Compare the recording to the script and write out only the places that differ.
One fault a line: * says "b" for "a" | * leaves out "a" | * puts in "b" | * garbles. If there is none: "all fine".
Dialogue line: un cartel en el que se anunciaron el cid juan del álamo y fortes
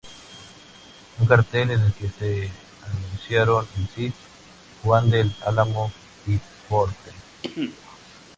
all fine